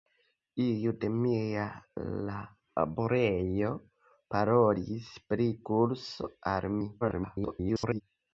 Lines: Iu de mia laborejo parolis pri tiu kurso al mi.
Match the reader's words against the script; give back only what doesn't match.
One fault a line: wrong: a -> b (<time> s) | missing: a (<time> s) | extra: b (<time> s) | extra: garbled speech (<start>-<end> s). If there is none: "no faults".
missing: tiu (5.5 s)
extra: garbled speech (7.0-8.0 s)